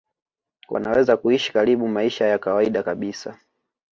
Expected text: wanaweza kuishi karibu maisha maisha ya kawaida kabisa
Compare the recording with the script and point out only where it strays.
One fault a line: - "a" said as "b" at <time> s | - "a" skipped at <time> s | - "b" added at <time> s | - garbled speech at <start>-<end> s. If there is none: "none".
- "maisha" skipped at 2.2 s